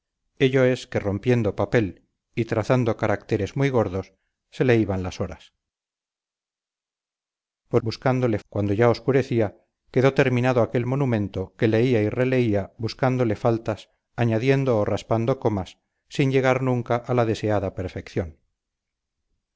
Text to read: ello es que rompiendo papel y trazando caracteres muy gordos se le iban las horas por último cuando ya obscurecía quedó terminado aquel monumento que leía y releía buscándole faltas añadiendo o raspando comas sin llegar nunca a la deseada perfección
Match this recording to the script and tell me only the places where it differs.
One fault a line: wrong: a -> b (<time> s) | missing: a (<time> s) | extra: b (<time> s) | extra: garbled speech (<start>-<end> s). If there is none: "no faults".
wrong: último -> buscándole (7.8 s)